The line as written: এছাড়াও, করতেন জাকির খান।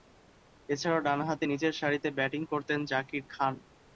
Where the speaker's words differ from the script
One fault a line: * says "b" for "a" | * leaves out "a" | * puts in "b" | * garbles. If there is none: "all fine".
* puts in "ডানহাতে নিচেরসারিতে ব্যাটিং"